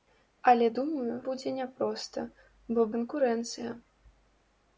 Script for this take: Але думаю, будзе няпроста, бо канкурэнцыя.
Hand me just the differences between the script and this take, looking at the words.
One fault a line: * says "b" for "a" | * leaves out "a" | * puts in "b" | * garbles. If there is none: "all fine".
all fine